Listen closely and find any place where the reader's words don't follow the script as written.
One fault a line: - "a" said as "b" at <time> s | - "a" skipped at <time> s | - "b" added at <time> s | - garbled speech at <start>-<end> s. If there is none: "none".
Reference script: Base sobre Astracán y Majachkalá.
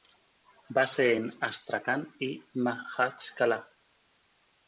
- "sobre" said as "en" at 1.1 s